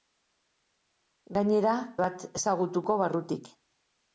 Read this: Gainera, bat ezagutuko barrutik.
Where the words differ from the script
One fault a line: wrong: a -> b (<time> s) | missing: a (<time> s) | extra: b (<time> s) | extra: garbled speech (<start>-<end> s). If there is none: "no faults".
no faults